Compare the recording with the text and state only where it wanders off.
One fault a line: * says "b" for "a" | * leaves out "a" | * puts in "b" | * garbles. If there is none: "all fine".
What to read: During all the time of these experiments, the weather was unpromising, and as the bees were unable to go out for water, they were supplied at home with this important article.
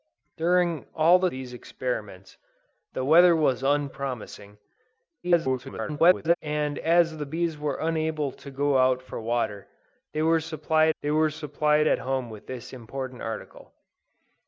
* leaves out "time of"
* garbles
* puts in "they were supplied"